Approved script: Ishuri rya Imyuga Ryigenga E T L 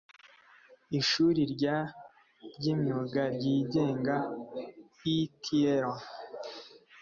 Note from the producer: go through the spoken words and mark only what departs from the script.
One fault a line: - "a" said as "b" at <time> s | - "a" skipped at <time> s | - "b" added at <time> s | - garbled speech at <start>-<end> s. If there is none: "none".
- "ry" added at 2.5 s